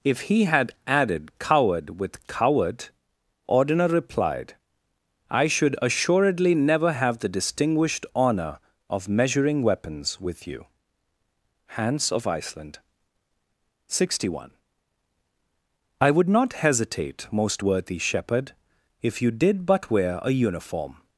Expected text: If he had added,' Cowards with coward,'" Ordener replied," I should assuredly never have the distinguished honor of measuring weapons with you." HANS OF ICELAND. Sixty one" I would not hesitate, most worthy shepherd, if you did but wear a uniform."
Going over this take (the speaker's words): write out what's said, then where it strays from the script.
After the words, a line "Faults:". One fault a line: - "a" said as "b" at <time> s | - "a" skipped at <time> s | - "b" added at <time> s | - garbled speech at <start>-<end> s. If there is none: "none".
If he had added,' Coward with coward,'" Ordener replied," I should assuredly never have the distinguished honor of measuring weapons with you." HANS OF ICELAND. Sixty one" I would not hesitate, most worthy shepherd, if you did but wear a uniform."
Faults:
- "Cowards" said as "Coward" at 1.4 s